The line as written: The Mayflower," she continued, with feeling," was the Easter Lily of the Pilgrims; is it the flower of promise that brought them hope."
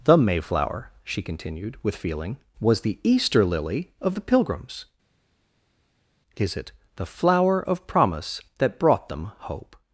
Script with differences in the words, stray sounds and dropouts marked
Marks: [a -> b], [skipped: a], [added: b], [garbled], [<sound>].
The Mayflower," she continued, with feeling," was the Easter Lily of the Pilgrims; is it the flower of promise that brought them hope."